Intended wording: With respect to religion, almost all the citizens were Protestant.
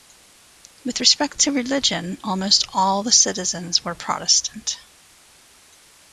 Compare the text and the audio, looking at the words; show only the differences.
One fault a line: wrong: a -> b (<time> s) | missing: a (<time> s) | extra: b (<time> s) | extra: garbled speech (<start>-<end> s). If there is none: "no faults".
no faults